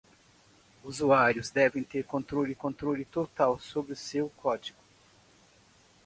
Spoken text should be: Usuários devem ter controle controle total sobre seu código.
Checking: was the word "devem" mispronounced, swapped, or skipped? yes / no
no